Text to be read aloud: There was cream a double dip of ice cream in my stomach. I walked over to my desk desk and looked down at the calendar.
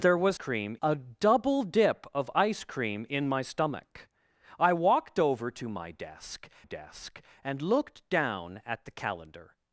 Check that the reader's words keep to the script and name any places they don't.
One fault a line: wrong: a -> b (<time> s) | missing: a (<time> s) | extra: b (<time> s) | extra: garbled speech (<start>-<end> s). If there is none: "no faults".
no faults